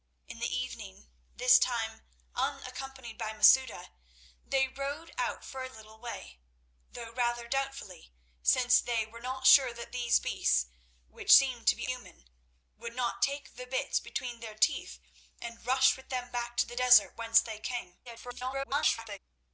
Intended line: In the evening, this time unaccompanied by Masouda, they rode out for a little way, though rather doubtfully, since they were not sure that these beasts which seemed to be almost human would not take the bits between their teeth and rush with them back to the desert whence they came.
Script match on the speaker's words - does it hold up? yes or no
no